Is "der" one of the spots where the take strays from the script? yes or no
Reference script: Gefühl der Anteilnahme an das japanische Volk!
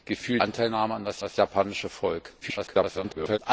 yes